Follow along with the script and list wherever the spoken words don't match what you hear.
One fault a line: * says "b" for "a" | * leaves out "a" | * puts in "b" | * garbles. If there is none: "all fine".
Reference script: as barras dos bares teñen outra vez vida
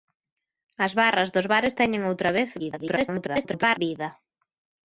* garbles